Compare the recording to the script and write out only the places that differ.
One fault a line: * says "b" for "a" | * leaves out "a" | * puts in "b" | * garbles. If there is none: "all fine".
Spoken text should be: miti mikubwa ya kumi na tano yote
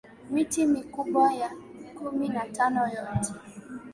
all fine